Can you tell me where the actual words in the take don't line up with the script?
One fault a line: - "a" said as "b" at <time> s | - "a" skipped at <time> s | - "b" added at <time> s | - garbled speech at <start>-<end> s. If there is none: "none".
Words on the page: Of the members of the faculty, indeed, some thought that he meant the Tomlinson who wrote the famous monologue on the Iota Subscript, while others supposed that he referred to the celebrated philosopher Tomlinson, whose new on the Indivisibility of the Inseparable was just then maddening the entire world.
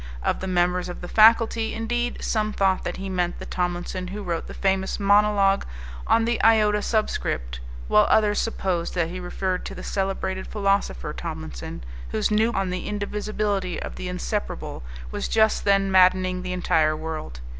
none